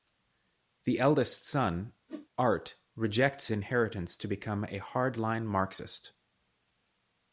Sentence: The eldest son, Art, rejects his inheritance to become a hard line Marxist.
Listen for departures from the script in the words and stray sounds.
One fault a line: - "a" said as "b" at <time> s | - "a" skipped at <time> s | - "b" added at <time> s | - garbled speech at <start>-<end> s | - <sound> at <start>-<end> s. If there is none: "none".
- whoosh at 2.1-2.3 s
- "his" skipped at 3.5 s